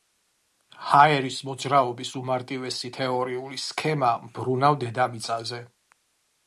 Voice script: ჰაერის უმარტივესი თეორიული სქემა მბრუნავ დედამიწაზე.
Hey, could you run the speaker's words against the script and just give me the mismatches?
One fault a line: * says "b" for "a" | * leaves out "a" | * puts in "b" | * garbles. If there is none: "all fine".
* puts in "მოძრაობის"